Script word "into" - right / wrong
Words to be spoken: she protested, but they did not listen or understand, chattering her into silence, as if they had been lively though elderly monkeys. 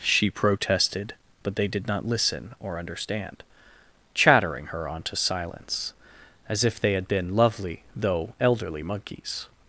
wrong